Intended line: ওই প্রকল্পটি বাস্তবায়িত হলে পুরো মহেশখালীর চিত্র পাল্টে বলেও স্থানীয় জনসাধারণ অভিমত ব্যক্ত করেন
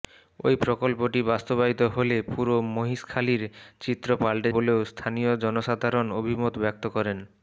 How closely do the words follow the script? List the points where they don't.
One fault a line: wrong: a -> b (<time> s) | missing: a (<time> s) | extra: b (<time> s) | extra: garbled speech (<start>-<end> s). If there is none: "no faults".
no faults